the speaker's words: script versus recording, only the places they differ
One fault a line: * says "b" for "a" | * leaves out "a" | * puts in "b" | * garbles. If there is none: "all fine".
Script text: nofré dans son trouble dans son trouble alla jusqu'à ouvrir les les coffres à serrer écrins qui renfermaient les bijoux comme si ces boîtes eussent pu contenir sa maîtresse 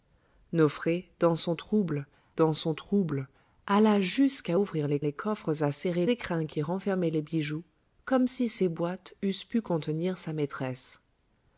all fine